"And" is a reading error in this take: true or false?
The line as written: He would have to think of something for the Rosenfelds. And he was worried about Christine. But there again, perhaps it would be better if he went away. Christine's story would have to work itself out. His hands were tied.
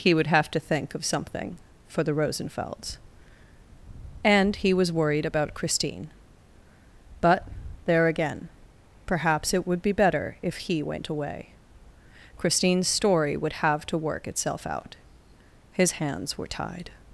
false